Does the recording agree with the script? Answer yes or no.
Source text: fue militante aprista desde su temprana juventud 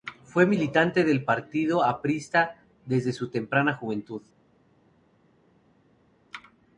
no